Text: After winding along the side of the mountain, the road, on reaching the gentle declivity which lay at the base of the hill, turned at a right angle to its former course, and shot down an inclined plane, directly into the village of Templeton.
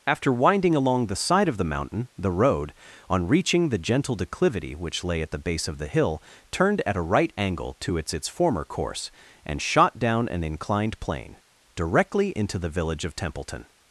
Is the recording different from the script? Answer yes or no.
yes